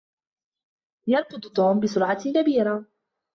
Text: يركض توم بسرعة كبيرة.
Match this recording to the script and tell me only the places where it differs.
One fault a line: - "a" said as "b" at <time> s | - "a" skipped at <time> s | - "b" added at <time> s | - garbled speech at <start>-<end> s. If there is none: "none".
none